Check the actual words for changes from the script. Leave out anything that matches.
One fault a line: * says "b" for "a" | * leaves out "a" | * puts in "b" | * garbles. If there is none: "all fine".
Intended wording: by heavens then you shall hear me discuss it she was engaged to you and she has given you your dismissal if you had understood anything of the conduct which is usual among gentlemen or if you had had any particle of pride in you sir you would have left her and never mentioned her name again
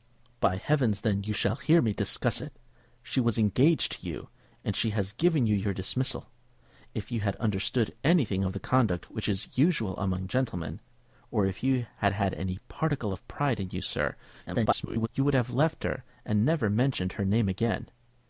* garbles